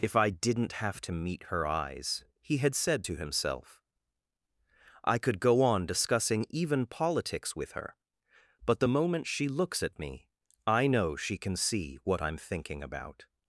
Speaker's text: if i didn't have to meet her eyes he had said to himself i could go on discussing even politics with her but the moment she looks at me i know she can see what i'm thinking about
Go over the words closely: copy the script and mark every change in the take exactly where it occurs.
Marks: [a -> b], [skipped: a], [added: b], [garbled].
if i didn't have to meet her eyes he had said to himself i could go on discussing even politics with her but the moment she looks at me i know she can see what i'm thinking about